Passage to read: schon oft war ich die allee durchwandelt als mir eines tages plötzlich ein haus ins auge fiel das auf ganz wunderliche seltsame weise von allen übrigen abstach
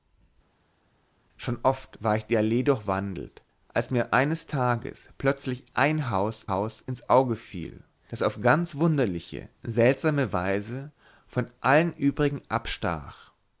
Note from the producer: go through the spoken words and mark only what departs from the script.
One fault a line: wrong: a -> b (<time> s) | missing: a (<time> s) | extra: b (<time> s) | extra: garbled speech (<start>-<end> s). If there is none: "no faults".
extra: haus (6.5 s)